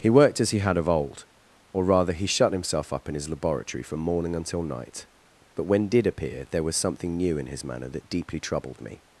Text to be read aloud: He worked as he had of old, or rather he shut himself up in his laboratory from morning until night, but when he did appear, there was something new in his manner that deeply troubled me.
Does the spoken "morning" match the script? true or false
true